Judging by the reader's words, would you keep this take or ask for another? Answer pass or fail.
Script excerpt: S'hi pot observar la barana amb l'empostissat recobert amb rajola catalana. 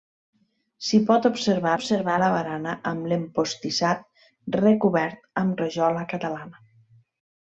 fail